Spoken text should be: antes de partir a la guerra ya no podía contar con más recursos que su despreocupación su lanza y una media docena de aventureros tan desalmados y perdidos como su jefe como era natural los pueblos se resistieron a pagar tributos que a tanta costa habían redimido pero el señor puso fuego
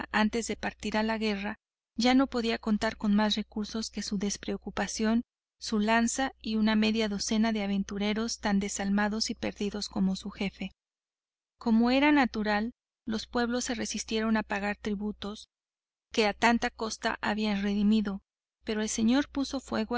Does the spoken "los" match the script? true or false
true